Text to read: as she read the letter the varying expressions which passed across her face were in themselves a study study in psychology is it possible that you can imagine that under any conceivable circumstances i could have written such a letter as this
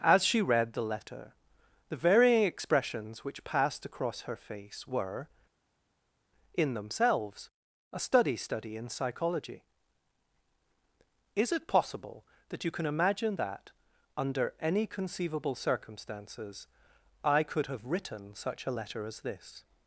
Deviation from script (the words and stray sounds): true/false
false